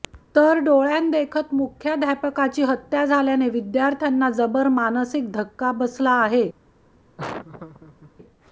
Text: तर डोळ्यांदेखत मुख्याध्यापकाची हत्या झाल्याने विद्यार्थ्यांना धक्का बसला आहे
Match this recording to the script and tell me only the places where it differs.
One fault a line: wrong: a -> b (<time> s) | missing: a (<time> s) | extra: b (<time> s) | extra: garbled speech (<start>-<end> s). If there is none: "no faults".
extra: जबर मानसिक (4.3 s)